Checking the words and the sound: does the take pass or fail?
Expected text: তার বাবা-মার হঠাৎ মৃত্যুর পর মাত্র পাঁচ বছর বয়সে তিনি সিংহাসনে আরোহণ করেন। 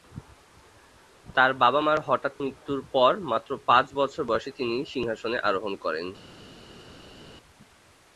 pass